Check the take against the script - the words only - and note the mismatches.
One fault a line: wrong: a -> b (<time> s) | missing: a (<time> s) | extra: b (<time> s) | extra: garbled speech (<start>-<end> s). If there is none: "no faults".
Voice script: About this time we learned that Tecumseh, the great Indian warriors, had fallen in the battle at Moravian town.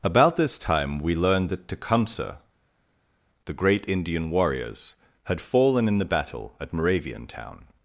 no faults